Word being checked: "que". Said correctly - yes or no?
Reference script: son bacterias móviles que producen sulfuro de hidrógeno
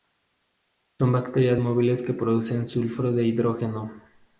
yes